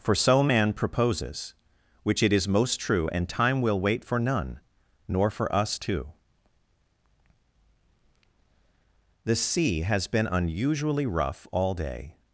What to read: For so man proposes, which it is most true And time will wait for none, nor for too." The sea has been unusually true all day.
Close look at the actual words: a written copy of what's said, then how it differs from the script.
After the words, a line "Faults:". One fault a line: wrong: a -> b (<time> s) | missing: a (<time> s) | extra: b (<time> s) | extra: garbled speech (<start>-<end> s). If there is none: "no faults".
For so man proposes, which it is most true And time will wait for none, nor for us too." The sea has been unusually rough all day.
Faults:
extra: us (5.5 s)
wrong: true -> rough (11.1 s)